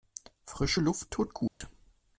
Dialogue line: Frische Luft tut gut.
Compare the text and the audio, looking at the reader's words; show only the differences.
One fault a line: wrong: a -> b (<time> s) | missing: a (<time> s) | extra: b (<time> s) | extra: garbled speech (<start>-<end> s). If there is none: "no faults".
no faults